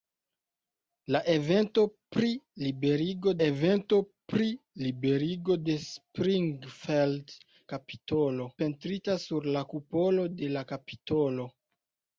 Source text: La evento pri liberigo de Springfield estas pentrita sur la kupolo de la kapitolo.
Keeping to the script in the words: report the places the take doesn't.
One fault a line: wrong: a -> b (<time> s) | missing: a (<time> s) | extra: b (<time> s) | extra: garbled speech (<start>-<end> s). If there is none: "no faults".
extra: evento pri liberigo (3.4 s)
wrong: estas -> kapitolo (7.7 s)